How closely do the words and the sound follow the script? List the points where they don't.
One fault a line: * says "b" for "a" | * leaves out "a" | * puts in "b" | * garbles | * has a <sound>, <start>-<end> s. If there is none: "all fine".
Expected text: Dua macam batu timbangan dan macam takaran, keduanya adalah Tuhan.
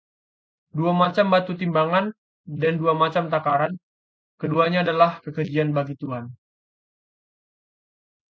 * puts in "dua"
* puts in "kekejian bagi"